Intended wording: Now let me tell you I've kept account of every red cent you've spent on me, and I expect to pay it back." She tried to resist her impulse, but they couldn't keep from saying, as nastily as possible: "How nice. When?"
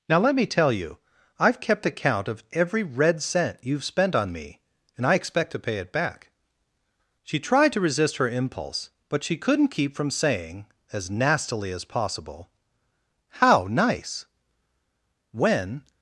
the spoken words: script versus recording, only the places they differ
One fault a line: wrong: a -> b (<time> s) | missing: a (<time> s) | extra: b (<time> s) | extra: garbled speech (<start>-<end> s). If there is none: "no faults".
wrong: they -> she (9.2 s)